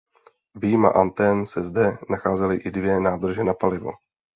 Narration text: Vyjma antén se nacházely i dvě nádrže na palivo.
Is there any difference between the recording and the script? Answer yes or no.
yes